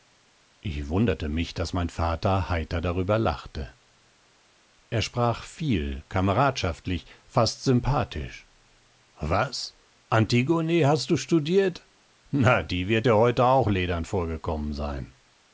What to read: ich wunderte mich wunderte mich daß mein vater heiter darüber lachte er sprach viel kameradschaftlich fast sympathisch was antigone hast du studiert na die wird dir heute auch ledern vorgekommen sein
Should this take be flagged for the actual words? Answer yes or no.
yes